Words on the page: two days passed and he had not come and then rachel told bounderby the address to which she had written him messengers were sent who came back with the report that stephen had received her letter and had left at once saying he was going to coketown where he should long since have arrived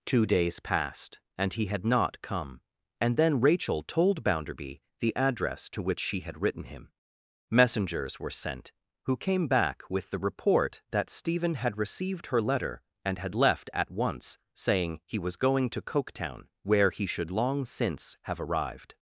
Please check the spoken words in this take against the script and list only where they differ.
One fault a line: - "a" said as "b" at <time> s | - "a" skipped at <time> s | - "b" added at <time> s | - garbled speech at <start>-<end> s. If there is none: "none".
none